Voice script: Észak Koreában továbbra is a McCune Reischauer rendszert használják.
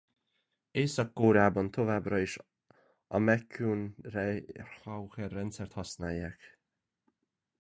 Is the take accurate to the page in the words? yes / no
yes